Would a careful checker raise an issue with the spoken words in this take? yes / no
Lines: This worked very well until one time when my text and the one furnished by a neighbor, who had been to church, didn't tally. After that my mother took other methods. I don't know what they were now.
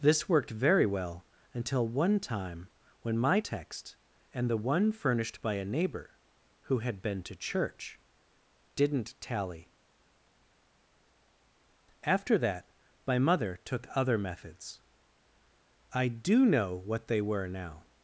yes